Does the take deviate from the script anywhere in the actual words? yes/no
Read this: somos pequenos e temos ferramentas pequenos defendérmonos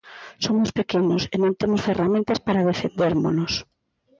yes